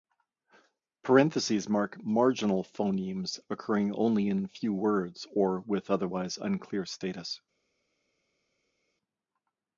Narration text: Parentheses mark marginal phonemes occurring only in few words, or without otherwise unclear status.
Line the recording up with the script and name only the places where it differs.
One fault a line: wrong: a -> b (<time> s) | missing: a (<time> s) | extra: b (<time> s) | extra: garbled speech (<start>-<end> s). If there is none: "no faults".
wrong: without -> with (5.6 s)